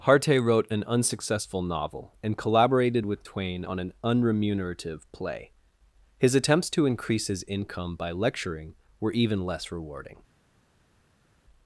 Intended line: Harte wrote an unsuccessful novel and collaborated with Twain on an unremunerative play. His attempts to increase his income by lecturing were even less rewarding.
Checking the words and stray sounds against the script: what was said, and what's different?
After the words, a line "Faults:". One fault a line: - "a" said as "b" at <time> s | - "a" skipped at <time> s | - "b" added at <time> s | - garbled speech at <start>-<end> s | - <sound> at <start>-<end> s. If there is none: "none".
Harte wrote an unsuccessful novel and collaborated with Twain on an unremunerative play. His attempts to increase his income by lecturing were even less rewarding.
Faults:
none